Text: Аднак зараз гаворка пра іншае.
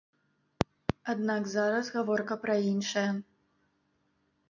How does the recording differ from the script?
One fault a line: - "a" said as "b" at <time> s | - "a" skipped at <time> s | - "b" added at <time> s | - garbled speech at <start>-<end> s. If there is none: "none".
none